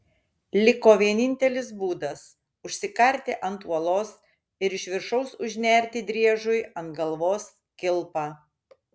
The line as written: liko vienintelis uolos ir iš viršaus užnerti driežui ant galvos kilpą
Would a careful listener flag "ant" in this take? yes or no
no